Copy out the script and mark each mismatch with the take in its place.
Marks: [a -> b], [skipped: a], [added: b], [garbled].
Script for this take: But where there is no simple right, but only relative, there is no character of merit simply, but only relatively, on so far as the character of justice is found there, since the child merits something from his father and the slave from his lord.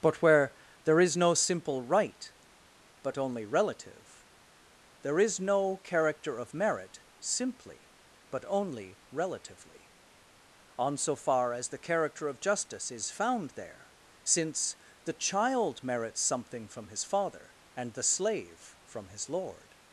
But where there is no simple right, but only relative, there is no character of merit simply, but only relatively, on so far as the character of justice is found there, since the child merits something from his father and the slave from his lord.